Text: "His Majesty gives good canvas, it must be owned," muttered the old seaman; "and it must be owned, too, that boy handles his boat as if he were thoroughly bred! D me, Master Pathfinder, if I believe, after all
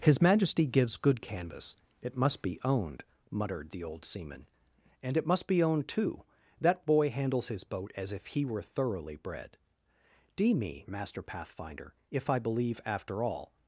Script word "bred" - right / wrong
right